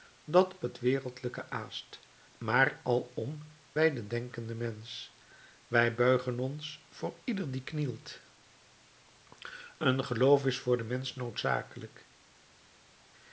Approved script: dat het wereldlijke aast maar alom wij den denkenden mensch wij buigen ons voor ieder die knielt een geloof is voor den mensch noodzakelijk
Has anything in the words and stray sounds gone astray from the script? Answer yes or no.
no